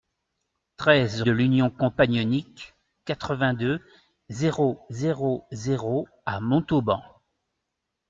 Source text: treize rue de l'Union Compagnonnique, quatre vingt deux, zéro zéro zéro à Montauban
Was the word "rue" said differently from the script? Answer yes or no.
yes